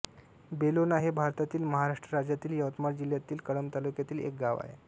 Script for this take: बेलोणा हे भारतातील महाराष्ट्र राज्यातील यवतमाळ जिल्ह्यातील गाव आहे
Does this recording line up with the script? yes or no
no